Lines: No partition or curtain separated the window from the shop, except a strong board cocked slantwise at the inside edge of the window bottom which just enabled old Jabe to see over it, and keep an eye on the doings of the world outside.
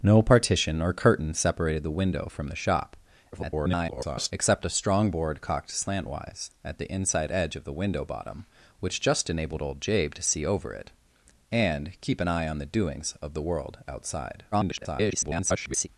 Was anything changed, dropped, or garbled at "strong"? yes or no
no